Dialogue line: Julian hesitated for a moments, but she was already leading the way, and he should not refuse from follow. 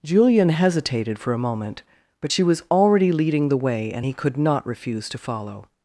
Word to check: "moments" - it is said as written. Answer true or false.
false